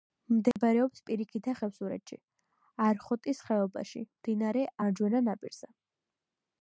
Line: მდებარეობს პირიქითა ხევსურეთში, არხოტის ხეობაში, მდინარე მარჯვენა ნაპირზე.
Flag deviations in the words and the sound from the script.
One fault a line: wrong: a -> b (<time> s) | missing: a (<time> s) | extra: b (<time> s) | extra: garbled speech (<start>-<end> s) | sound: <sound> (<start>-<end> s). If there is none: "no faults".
sound: dropout (0.5-0.6 s)